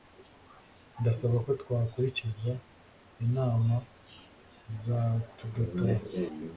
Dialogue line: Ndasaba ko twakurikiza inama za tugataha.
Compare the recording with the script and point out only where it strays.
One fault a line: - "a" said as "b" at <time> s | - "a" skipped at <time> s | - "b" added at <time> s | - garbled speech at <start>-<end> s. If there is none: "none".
none